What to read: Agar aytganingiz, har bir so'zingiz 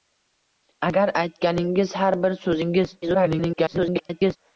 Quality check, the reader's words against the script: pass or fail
fail